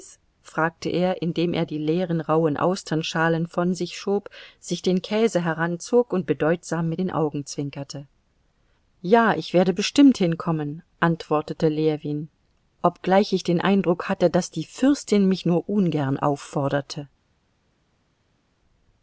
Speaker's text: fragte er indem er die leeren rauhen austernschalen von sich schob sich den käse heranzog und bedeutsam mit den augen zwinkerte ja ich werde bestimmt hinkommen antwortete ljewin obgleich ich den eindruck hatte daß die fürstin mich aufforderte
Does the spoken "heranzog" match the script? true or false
true